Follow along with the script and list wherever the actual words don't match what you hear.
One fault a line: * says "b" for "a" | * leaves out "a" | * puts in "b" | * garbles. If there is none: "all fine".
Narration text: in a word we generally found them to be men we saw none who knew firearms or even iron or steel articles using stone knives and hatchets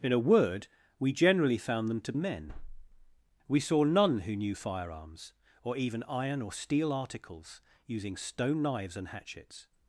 * leaves out "be"